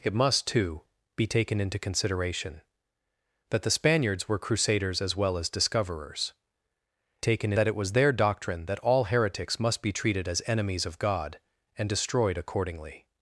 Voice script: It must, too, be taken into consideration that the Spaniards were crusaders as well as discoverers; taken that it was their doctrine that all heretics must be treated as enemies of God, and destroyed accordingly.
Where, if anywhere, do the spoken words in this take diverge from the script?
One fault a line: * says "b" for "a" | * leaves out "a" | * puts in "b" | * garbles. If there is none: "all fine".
all fine